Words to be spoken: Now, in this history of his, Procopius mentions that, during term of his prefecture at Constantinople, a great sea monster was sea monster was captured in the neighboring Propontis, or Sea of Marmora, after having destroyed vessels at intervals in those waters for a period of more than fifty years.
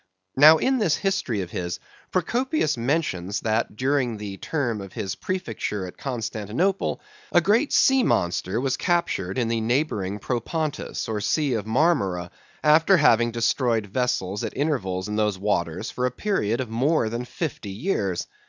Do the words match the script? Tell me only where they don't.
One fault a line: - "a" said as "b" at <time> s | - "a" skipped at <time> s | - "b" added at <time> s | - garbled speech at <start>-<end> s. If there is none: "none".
- "the" added at 4.2 s
- "sea monster was" skipped at 8.8 s